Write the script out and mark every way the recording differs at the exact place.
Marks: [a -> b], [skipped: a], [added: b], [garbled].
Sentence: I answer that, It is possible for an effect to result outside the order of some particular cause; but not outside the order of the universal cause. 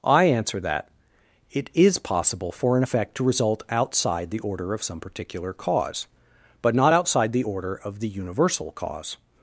I answer that, It is possible for an effect to result outside the order of some particular cause; but not outside the order of the universal cause.